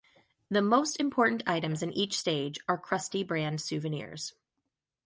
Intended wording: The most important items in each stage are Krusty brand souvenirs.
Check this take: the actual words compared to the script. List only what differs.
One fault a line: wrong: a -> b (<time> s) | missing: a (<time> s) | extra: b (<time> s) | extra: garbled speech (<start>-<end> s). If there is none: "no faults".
no faults